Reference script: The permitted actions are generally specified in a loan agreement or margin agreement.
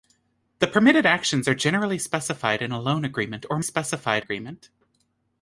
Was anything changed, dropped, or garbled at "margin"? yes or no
yes